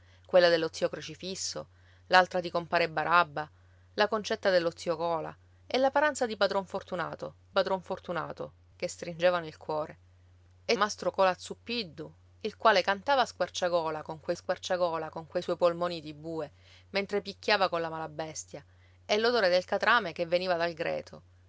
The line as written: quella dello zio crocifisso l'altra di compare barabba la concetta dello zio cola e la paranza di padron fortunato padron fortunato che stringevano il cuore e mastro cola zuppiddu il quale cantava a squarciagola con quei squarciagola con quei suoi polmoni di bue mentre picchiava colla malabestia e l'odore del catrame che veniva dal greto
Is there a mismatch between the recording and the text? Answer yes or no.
no